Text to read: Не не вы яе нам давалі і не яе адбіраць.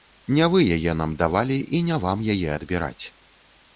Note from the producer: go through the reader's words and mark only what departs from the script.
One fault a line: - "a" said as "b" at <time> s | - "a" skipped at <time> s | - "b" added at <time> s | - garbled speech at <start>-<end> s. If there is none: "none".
- "не" skipped at 0.5 s
- "вам" added at 2.1 s